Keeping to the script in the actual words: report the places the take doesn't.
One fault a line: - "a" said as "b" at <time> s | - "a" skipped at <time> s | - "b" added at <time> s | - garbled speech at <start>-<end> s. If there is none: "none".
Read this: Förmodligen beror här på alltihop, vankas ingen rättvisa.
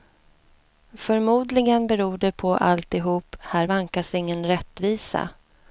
- "här" said as "det" at 2.2 s
- "här" added at 3.4 s